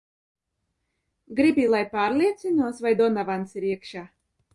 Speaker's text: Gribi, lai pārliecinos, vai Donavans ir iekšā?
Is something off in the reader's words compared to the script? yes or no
no